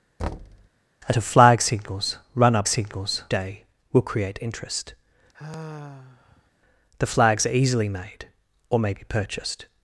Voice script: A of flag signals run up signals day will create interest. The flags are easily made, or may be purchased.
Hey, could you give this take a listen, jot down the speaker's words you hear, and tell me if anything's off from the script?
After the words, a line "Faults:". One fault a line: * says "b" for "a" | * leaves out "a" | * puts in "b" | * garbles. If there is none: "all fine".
A of flag signals run up signals day will create interest. The flags are easily made, or may be purchased.
Faults:
all fine